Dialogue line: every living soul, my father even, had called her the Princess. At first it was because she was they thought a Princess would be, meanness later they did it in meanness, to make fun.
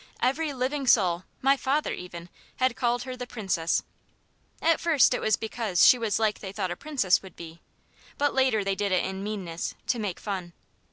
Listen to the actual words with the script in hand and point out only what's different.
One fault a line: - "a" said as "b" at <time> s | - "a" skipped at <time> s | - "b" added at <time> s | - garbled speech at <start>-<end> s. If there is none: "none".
- "like" added at 6.2 s
- "meanness" said as "but" at 8.2 s